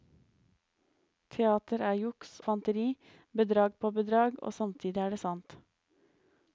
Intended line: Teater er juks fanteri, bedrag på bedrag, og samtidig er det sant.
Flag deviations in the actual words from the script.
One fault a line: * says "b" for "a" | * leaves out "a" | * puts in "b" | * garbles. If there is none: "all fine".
all fine